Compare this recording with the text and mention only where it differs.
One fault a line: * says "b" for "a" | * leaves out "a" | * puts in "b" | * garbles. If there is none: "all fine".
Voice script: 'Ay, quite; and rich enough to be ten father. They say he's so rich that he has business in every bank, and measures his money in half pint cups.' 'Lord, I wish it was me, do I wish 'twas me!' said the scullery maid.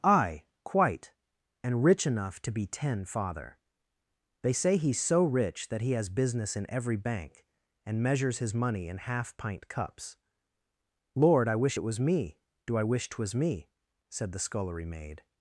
all fine